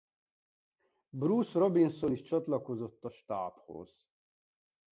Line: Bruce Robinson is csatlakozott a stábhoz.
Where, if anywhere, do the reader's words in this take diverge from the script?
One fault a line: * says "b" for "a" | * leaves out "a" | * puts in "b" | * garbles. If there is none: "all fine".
all fine